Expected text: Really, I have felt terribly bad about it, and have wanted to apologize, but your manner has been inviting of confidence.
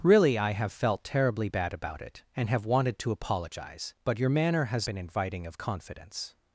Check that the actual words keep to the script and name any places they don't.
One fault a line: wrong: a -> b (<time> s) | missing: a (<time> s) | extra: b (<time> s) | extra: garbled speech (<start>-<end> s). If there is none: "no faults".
no faults